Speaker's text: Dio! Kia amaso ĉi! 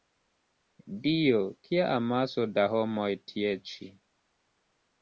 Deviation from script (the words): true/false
true